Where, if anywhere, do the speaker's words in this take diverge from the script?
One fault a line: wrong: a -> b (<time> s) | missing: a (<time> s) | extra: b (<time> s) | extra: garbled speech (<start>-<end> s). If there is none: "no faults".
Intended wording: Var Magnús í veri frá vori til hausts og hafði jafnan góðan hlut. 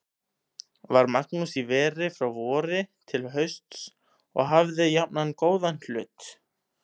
no faults